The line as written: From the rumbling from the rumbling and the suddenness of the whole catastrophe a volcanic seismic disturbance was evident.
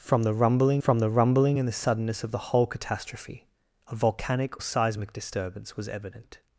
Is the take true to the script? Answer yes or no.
yes